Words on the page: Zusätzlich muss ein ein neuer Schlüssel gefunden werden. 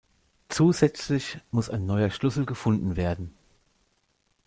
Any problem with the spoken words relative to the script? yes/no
yes